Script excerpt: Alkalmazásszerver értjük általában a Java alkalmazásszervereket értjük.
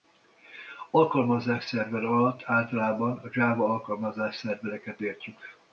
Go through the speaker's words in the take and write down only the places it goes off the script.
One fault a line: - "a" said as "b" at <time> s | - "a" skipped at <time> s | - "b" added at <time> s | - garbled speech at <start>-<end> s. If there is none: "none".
- "értjük" said as "alatt" at 2.0 s